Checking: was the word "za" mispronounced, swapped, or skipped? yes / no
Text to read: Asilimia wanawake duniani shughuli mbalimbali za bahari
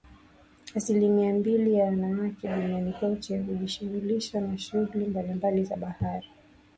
no